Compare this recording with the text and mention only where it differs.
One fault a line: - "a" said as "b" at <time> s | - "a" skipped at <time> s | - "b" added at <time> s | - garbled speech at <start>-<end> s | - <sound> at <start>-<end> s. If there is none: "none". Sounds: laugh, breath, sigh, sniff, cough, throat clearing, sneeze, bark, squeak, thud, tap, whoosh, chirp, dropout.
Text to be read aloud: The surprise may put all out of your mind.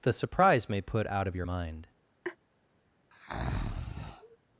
- "all" skipped at 1.1 s
- laugh at 2.2-2.4 s
- breath at 3.1-4.4 s